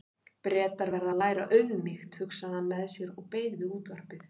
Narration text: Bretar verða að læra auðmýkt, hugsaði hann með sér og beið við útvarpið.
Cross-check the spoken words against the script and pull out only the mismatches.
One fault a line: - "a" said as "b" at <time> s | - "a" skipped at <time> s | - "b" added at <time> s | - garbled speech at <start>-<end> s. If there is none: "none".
none